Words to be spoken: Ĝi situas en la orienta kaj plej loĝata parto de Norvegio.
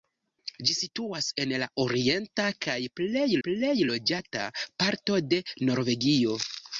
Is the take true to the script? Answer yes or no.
no